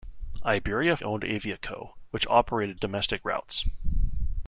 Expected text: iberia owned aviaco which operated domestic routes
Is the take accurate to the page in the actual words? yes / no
yes